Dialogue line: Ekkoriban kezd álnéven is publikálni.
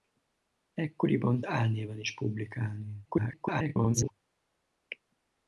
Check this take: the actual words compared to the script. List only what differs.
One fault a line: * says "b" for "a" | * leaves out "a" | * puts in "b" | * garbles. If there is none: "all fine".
* leaves out "kezd"
* garbles